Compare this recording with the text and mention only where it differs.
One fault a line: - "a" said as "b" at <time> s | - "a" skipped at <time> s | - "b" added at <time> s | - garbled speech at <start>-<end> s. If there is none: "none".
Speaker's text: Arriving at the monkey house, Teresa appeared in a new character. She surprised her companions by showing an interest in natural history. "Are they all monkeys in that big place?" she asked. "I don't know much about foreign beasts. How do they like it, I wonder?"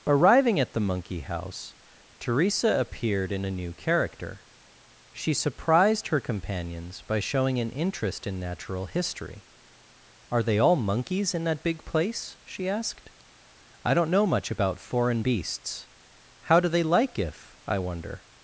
- "it" said as "if" at 17.2 s